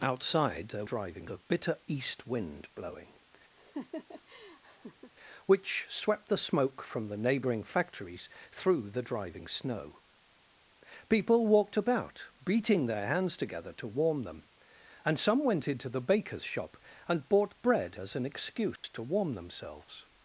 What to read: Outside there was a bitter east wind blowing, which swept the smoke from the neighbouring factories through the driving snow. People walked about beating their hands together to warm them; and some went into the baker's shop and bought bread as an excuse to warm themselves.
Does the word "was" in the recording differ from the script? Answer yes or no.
yes